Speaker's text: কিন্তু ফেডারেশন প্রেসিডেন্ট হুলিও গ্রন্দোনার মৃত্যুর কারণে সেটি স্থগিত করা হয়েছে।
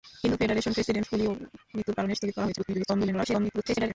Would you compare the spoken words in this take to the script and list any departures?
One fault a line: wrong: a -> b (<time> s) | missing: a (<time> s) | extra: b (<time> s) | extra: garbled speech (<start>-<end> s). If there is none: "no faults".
missing: গ্রন্দোনার (1.3 s)
missing: সেটি (2.1 s)
extra: garbled speech (2.6-3.9 s)